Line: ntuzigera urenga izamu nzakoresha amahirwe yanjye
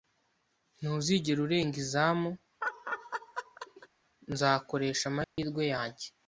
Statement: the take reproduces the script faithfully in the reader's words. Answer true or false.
true